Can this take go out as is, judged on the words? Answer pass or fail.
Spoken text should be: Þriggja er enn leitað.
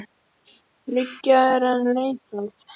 pass